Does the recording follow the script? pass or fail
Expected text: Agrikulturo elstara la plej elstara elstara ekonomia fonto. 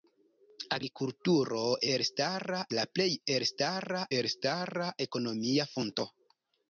pass